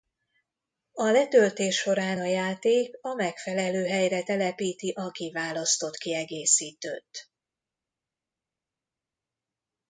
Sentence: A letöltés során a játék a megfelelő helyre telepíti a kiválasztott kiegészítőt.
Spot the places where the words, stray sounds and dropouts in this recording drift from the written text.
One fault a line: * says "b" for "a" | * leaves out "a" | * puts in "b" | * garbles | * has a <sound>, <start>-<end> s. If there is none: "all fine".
all fine